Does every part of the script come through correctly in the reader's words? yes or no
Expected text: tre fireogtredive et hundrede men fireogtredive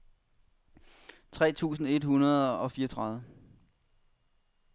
no